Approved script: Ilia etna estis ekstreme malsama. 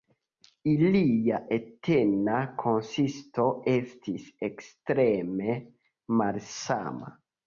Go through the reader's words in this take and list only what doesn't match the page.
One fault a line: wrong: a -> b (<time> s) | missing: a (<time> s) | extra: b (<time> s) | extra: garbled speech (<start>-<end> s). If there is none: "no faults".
extra: konsisto (2.6 s)